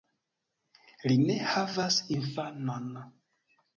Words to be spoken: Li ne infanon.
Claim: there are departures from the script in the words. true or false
true